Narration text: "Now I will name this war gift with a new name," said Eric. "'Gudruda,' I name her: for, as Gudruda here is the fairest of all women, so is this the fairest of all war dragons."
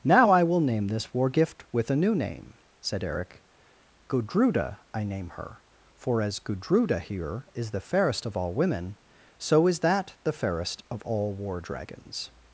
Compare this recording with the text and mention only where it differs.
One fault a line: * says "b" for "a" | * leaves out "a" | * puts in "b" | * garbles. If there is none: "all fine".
* says "that" for "this"